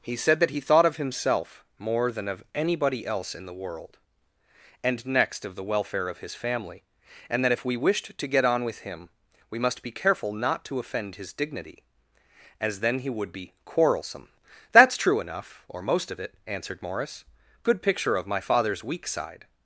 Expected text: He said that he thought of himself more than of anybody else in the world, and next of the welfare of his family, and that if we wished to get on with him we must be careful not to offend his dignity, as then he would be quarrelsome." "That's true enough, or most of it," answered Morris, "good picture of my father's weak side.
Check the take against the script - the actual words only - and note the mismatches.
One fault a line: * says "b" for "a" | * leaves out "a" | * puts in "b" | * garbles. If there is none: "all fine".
all fine